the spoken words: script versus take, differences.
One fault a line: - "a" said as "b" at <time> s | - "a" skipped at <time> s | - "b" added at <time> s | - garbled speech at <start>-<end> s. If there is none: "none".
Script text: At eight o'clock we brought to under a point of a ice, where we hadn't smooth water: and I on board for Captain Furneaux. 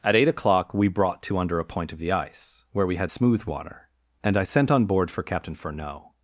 - "a" said as "the" at 2.0 s
- "hadn't" said as "had" at 3.0 s
- "sent" added at 4.4 s